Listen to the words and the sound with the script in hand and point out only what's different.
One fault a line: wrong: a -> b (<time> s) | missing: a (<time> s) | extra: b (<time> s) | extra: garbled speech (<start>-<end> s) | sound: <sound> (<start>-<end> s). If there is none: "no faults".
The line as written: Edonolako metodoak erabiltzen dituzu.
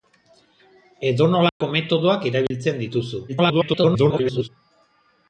sound: dropout (1.5-1.6 s)
sound: dropout (2.5-2.5 s)
extra: garbled speech (3.3-4.5 s)